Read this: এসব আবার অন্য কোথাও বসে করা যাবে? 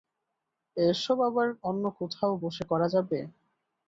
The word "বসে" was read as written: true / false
true